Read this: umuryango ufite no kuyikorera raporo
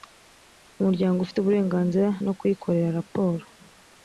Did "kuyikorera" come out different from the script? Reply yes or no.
no